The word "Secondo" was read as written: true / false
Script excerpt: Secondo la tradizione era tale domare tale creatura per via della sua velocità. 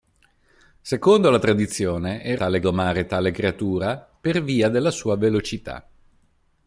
true